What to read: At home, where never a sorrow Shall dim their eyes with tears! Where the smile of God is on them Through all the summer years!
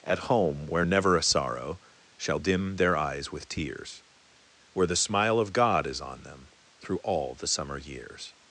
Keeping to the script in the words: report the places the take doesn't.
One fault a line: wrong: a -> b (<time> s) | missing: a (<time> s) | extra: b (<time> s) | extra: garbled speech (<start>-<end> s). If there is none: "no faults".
no faults